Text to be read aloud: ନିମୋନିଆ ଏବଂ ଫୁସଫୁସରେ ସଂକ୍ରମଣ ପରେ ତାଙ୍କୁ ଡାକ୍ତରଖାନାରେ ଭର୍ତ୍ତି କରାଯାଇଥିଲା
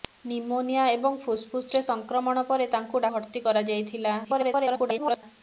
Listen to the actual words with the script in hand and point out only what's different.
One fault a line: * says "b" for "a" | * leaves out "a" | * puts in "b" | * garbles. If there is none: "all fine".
* leaves out "ଡାକ୍ତରଖାନାରେ"
* garbles